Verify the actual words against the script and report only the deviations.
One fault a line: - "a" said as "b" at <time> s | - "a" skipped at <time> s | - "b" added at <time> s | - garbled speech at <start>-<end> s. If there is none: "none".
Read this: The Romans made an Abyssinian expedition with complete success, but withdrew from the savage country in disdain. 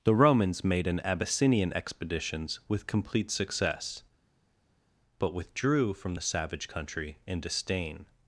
- "expedition" said as "expeditions" at 1.7 s